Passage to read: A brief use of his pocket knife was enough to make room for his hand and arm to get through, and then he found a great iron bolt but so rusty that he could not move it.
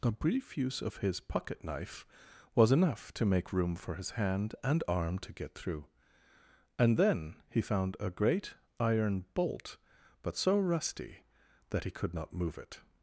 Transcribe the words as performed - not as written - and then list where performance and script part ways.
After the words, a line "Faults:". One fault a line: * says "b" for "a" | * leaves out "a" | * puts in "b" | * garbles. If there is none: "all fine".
A brief use of his pocket knife was enough to make room for his hand and arm to get through, and then he found a great iron bolt but so rusty that he could not move it.
Faults:
all fine